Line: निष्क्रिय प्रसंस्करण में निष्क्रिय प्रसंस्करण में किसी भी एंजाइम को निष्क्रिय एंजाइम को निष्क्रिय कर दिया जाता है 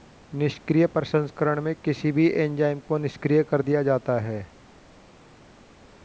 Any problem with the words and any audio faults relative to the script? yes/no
yes